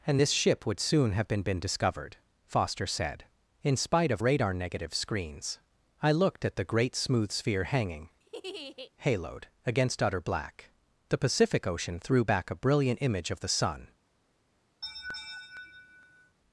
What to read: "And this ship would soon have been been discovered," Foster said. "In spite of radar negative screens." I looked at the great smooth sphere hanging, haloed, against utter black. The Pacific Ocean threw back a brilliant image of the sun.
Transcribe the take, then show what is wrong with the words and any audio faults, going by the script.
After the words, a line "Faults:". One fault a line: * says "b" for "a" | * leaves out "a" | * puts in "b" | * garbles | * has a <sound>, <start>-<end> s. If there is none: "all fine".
"And this ship would soon have been been discovered," Foster said. "In spite of radar negative screens." I looked at the great smooth sphere hanging, haloed, against utter black. The Pacific Ocean threw back a brilliant image of the sun.
Faults:
* has a laugh, 8.2-8.9 s
* has a laugh, 14.8-16.4 s